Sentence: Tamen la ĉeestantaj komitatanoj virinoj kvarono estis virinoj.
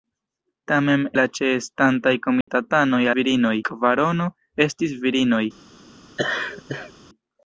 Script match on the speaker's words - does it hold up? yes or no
yes